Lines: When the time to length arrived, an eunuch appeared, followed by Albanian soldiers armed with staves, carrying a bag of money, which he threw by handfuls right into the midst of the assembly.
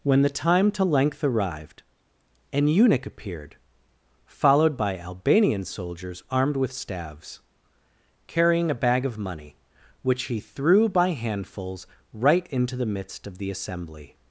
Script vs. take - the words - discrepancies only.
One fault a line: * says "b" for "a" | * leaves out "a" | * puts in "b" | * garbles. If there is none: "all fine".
all fine